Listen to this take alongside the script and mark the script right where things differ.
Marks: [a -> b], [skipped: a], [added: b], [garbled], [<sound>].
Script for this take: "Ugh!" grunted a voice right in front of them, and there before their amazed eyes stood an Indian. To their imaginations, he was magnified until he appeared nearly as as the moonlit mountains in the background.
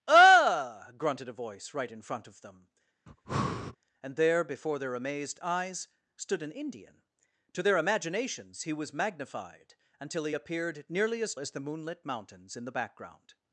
"Ugh!" grunted a voice right in front of them, [breath] and there before their amazed eyes stood an Indian. To their imaginations, he was magnified until he appeared nearly as as the moonlit mountains in the background.